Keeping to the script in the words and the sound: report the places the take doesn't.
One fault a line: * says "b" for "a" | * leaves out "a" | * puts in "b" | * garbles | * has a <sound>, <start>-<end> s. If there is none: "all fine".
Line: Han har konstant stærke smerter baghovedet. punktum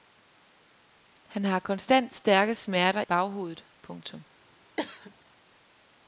* has a cough, 4.8-5.1 s